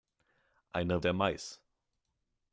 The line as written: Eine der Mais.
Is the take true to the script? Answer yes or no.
yes